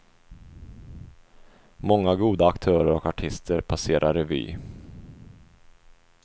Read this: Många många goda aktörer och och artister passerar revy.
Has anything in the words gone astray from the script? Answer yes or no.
yes